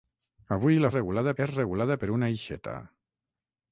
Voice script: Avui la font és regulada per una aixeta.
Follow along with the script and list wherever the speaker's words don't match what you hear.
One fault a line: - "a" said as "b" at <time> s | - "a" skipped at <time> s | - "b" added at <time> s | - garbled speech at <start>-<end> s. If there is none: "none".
- "font" said as "regulada" at 1.0 s